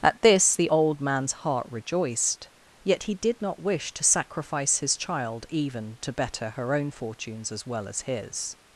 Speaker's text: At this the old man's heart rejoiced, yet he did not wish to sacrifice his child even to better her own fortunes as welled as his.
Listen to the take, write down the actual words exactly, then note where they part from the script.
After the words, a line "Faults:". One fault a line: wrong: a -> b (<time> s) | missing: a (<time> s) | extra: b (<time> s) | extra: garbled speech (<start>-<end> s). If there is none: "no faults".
At this the old man's heart rejoiced, yet he did not wish to sacrifice his child even to better her own fortunes as well as his.
Faults:
wrong: welled -> well (7.6 s)